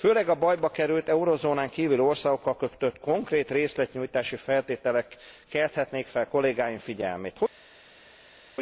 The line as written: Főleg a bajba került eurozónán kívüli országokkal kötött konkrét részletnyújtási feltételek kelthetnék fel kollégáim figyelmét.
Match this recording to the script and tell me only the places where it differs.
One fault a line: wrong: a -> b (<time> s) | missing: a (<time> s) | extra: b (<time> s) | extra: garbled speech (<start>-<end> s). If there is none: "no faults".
no faults